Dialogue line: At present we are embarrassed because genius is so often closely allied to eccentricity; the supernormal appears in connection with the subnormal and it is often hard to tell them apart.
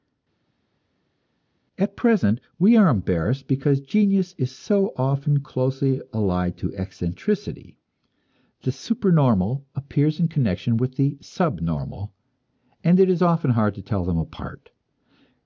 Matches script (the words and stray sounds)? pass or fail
pass